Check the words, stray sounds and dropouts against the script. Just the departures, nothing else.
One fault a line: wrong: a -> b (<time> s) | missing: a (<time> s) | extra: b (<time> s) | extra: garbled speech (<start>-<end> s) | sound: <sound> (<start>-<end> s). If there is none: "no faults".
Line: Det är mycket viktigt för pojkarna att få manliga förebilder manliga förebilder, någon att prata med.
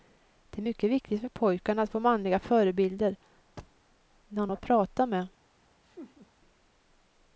missing: manliga förebilder (3.2 s)
sound: thud (3.6-3.8 s)
sound: laugh (5.8-6.3 s)